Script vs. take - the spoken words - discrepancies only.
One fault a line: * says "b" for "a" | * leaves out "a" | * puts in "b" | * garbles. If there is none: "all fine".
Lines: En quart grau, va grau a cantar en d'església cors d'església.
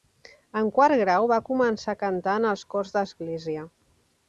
* says "començar" for "grau"
* says "els" for "d'església"